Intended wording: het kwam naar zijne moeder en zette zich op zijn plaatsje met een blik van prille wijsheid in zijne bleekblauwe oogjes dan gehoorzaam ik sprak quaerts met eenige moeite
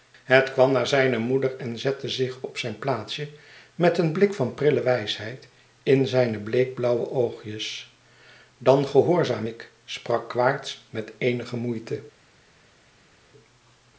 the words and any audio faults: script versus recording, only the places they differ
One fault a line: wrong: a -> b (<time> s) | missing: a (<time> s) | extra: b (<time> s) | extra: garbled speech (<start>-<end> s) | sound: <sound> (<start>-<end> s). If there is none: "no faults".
no faults